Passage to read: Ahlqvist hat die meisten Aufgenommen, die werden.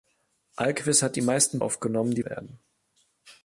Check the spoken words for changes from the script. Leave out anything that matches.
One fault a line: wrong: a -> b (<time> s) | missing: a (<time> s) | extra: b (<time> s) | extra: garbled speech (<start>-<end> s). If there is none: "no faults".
no faults